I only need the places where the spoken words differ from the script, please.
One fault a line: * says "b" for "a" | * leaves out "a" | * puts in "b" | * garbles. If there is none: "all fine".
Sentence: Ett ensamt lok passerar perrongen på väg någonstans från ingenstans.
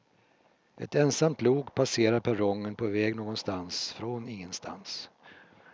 all fine